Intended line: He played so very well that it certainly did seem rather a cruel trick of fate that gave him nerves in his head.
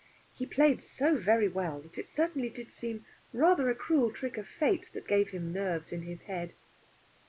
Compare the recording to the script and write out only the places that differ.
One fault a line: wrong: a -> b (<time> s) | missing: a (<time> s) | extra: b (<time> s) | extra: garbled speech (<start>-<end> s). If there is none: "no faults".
no faults